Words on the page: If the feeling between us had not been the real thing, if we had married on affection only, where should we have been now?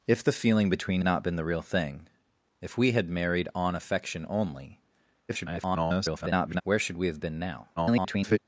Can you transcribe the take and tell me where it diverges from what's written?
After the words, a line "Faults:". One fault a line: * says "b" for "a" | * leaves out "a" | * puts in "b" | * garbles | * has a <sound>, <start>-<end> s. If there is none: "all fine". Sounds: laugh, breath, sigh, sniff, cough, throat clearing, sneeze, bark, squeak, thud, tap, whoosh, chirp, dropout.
If the feeling between not been the real thing, if we had married on affection only, [garbled] where should we have been now? [garbled]
Faults:
* leaves out "us had"
* garbles
* garbles